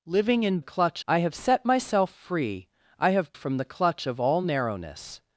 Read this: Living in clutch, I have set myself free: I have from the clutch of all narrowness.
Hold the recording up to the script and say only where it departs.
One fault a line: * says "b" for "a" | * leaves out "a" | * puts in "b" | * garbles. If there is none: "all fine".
all fine